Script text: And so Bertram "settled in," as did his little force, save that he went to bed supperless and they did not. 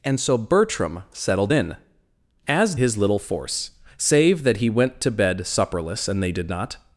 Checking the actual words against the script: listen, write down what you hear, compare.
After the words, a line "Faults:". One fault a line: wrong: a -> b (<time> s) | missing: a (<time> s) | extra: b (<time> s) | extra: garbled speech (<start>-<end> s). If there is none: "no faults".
And so Bertram "settled in," as his little force, save that he went to bed supperless and they did not.
Faults:
missing: did (2.7 s)